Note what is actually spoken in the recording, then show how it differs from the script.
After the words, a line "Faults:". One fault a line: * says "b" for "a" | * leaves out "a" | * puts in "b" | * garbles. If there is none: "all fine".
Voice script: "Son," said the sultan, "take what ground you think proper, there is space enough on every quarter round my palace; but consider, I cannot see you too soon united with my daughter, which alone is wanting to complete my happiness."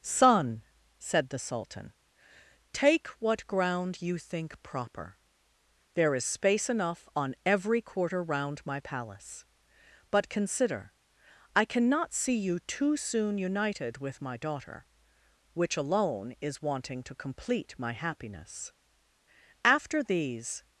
"Son," said the sultan, "take what ground you think proper, there is space enough on every quarter round my palace; but consider, I cannot see you too soon united with my daughter, which alone is wanting to complete my happiness." After these
Faults:
* puts in "After these"